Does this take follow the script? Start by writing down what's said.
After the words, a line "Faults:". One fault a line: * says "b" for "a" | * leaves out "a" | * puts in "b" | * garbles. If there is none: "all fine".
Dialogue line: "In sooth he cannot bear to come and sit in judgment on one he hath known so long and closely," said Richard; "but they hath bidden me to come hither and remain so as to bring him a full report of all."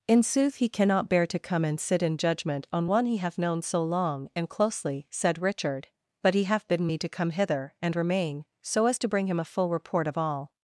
"In sooth he cannot bear to come and sit in judgment on one he hath known so long and closely," said Richard; "but he hath bidden me to come hither and remain so as to bring him a full report of all."
Faults:
* says "he" for "they"